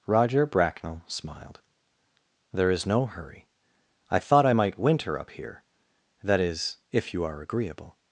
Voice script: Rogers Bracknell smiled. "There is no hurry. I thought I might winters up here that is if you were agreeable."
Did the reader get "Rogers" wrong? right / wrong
wrong